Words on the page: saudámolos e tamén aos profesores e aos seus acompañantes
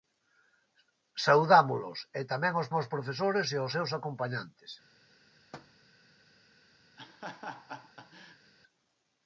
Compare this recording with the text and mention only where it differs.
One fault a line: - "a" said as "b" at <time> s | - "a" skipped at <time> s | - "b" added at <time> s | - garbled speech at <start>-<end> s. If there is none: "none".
- "aos" added at 2.7 s